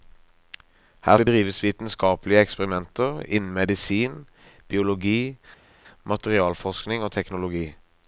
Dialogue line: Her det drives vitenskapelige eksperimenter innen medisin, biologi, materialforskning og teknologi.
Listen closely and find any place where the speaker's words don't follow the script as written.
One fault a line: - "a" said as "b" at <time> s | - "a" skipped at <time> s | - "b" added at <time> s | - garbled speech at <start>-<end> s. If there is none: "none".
none